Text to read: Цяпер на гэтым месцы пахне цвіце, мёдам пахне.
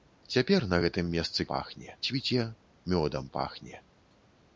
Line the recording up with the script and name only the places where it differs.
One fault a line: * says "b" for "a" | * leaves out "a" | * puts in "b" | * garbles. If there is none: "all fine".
all fine